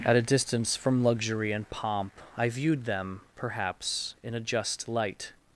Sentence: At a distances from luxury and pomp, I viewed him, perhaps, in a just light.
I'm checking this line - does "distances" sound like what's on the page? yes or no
no